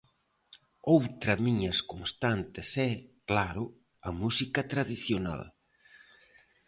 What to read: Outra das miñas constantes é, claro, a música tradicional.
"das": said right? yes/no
no